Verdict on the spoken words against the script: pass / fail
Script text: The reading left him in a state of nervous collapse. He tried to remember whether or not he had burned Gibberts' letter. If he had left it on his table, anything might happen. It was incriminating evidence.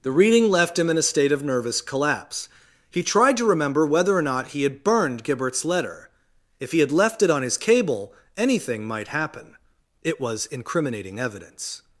fail